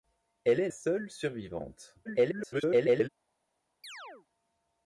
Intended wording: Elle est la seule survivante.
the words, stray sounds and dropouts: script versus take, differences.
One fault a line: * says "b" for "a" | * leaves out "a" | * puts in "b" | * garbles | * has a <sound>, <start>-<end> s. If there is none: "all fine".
* leaves out "la"
* garbles
* has a chirp, 3.8-4.3 s